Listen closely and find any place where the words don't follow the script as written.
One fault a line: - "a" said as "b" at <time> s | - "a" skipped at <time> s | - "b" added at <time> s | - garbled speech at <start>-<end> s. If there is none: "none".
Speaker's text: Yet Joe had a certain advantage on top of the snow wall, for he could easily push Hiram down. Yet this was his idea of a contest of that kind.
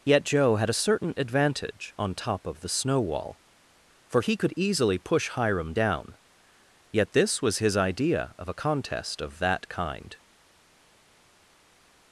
none